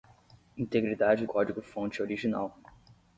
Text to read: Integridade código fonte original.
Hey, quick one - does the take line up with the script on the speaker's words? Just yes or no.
yes